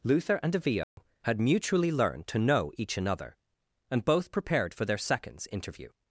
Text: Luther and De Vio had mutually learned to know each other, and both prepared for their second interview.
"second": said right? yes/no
no